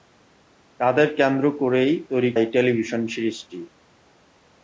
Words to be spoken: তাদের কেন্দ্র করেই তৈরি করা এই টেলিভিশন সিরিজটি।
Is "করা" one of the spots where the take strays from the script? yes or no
yes